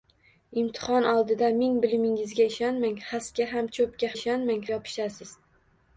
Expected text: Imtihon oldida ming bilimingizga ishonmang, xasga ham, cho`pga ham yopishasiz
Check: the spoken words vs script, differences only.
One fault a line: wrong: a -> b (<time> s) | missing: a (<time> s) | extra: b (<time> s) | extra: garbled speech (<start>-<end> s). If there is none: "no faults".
wrong: ham -> ishonmang (4.2 s)